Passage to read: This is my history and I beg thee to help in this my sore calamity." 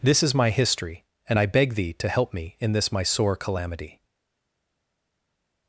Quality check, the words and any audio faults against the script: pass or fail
fail